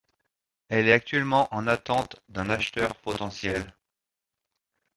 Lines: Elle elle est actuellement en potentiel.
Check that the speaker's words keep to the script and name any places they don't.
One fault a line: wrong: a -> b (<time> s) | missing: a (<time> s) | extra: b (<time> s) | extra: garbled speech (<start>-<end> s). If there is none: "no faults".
missing: elle (0.9 s)
extra: attente d'un acheteur (1.7 s)